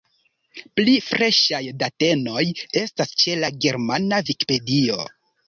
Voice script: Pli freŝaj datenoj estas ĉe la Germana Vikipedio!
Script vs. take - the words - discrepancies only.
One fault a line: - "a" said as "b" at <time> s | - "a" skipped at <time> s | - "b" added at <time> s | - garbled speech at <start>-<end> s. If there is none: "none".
none